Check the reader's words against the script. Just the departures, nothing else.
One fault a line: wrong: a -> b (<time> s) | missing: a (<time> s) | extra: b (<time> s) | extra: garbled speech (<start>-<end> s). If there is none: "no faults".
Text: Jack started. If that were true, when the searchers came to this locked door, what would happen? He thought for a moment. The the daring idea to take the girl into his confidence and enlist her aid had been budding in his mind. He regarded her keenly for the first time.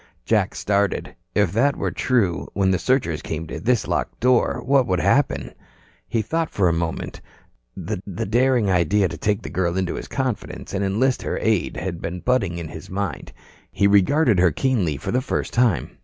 no faults